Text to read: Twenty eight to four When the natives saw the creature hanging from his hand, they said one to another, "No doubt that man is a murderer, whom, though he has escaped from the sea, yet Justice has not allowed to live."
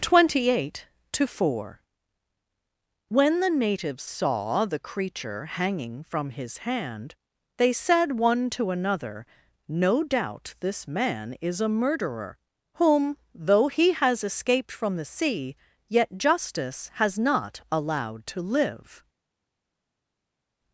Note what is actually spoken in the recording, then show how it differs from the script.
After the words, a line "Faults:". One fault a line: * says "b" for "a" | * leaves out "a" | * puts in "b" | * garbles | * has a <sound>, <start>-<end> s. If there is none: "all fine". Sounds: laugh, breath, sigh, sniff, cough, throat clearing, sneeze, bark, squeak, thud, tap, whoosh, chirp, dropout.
Twenty eight to four When the natives saw the creature hanging from his hand, they said one to another, "No doubt this man is a murderer, whom, though he has escaped from the sea, yet Justice has not allowed to live."
Faults:
* says "this" for "that"